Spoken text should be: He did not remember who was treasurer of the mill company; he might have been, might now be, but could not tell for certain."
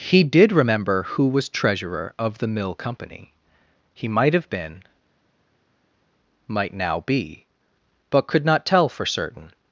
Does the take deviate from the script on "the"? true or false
false